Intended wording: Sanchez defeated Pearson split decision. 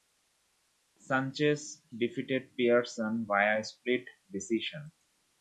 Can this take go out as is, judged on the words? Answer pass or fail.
fail